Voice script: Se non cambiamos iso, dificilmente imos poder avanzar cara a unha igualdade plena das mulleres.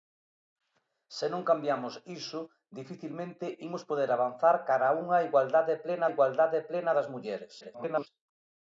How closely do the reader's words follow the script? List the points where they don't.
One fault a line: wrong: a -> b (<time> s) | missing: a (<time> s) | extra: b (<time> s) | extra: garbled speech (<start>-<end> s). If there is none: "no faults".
extra: igualdade plena (6.1 s)
extra: garbled speech (7.6-8.1 s)